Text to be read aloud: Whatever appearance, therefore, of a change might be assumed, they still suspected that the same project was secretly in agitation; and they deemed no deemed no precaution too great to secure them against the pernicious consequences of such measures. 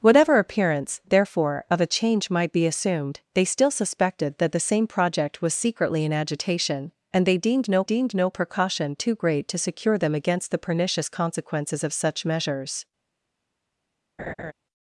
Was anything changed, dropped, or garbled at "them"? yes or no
no